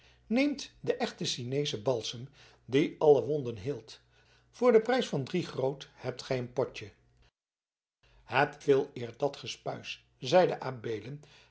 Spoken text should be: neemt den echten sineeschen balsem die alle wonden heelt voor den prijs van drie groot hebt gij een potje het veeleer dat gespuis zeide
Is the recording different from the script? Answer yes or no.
no